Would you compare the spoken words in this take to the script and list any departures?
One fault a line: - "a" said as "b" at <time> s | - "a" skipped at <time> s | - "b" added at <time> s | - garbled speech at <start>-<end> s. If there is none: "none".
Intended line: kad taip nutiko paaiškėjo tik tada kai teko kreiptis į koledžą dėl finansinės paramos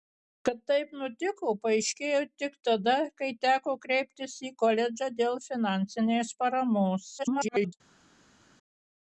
- garbled speech at 7.2-7.7 s